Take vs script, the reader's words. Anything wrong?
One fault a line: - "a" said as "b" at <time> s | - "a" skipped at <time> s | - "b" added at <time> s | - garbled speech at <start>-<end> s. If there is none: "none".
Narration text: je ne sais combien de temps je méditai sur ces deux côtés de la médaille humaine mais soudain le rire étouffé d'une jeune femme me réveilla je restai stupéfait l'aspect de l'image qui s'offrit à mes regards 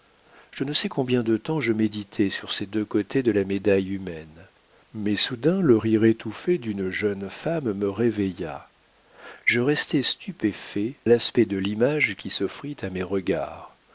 none